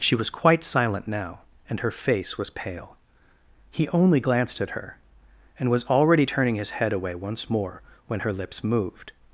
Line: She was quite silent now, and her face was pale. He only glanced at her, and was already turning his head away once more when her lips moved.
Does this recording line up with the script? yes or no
yes